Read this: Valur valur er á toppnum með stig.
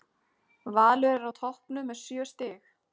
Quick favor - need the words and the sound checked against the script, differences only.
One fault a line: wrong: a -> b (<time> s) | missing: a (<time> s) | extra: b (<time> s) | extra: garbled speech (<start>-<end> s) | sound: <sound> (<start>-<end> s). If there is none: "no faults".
missing: valur (1.1 s)
extra: sjö (2.0 s)